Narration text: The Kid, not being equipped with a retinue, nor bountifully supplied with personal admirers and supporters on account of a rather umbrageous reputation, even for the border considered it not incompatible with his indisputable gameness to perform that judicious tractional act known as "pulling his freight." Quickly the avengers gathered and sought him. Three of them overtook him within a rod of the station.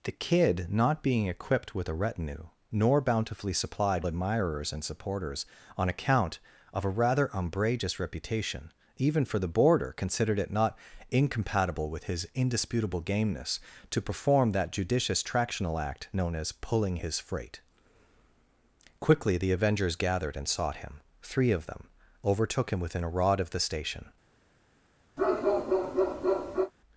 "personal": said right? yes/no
no